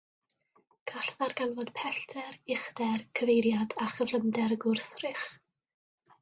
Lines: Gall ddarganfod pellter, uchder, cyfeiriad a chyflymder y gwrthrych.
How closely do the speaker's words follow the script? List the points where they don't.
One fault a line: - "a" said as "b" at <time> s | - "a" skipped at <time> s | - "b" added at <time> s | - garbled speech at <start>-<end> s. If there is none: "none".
none